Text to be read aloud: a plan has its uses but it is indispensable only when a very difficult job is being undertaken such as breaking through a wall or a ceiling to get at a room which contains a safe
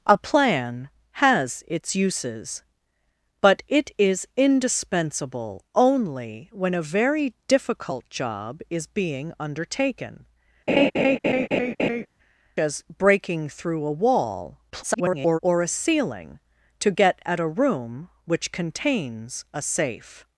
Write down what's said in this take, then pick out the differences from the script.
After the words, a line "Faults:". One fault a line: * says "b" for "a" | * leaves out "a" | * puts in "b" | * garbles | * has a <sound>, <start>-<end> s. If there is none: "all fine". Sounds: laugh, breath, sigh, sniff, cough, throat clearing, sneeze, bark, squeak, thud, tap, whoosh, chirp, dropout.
a plan has its uses but it is indispensable only when a very difficult job is being undertaken as breaking through a wall [garbled] or a ceiling to get at a room which contains a safe
Faults:
* leaves out "such"
* has a laugh, 10.7-12.1 s
* garbles